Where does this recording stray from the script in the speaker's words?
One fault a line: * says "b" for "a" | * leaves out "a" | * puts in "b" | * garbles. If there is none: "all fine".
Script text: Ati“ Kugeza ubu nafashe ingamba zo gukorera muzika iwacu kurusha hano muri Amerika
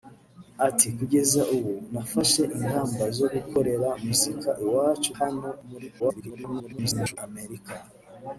* leaves out "kurusha"
* garbles